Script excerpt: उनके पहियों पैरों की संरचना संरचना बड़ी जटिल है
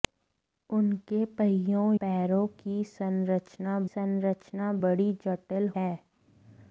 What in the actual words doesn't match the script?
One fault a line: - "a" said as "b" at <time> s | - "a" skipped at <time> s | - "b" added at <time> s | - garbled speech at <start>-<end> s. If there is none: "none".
none